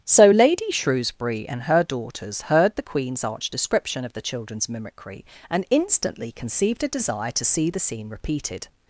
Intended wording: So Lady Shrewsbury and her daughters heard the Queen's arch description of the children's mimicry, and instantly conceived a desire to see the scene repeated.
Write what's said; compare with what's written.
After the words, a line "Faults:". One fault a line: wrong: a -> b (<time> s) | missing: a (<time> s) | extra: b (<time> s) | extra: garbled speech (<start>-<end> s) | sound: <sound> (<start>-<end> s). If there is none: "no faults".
So Lady Shrewsbury and her daughters heard the Queen's arch description of the children's mimicry, and instantly conceived a desire to see the scene repeated.
Faults:
no faults